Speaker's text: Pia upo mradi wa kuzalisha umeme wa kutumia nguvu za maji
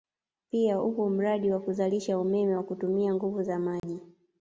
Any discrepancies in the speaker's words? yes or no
no